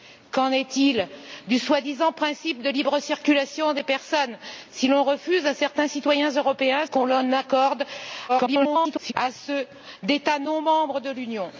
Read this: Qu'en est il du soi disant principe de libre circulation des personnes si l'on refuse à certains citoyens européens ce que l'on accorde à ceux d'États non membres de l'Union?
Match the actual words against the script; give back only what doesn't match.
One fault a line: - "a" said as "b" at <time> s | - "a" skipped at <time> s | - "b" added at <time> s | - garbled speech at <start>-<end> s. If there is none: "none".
- "ce" skipped at 6.9 s
- garbled speech at 8.3-9.1 s